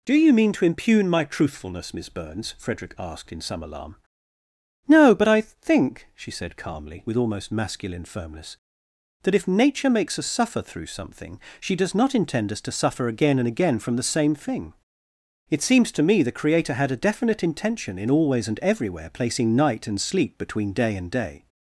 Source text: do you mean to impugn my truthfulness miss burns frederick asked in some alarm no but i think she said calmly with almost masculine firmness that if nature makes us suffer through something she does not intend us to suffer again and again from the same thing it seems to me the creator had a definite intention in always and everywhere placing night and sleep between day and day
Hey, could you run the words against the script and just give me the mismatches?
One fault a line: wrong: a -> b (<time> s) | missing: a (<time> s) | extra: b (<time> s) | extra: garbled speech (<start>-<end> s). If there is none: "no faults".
no faults